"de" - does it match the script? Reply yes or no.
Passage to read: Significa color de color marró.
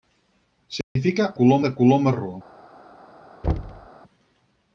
yes